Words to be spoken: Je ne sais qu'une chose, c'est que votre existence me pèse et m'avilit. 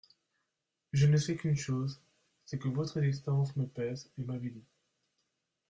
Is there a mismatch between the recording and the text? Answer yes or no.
no